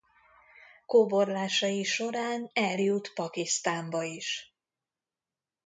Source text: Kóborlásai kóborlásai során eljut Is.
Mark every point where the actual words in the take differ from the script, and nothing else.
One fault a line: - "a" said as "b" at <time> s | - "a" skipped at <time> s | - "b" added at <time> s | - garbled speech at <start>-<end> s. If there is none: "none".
- "kóborlásai" skipped at 1.8 s
- "Pakisztánba" added at 3.1 s